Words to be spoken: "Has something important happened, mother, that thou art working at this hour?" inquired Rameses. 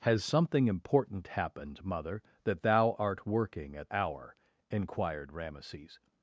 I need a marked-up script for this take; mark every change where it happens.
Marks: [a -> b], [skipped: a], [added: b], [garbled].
"Has something important happened, mother, that thou art working at [skipped: this] hour?" inquired Rameses.